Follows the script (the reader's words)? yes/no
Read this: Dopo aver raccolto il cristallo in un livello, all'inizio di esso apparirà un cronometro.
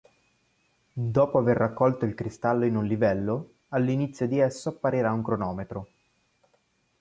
yes